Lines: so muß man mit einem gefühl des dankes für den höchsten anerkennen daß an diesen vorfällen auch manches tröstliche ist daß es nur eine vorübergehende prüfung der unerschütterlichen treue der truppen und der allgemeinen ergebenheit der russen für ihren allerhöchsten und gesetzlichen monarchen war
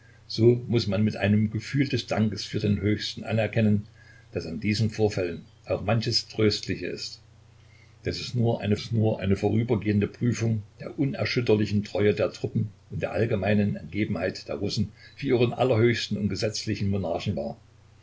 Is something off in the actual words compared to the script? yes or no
yes